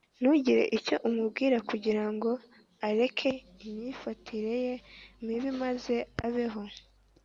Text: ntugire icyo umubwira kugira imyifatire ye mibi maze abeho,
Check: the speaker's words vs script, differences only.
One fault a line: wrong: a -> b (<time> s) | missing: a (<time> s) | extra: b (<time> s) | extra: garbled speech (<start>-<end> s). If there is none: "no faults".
extra: ngo areke (2.1 s)